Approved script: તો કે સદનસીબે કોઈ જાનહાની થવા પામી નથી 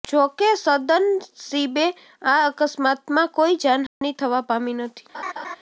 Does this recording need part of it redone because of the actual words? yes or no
yes